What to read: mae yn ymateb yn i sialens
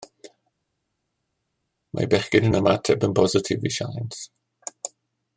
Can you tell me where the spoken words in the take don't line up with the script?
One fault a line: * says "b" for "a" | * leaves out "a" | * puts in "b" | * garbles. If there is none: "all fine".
* puts in "bechgyn"
* puts in "bositif"